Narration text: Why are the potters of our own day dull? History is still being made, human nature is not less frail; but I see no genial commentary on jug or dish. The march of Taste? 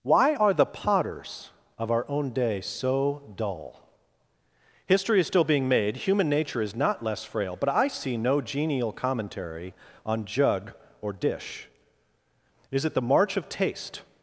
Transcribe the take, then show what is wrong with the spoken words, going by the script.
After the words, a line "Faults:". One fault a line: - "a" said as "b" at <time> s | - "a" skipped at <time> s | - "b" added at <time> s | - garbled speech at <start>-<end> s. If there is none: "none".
Why are the potters of our own day so dull? History is still being made, human nature is not less frail; but I see no genial commentary on jug or dish. Is it the march of Taste?
Faults:
- "so" added at 2.6 s
- "Is it" added at 12.7 s